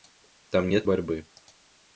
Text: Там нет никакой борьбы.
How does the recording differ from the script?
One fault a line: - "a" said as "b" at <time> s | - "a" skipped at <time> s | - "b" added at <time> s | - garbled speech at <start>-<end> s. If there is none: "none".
- "никакой" skipped at 0.9 s